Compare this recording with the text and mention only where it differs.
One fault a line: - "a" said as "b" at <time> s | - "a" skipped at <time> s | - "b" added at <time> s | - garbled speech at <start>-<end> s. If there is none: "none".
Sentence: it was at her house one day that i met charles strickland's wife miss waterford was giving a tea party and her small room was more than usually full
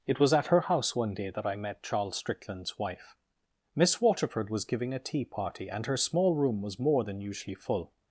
none